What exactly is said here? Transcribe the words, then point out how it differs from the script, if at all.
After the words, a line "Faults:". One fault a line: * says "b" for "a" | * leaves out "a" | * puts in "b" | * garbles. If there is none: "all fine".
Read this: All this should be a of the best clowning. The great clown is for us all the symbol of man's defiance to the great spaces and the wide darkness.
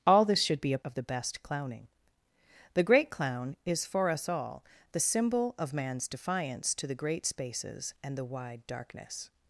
All this should be a of the best clowning. The great clown is for us all the symbol of man's defiance to the great spaces and the wide darkness.
Faults:
all fine